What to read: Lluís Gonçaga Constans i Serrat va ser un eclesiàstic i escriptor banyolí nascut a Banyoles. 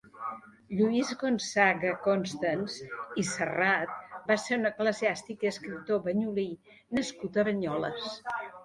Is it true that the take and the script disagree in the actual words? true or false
false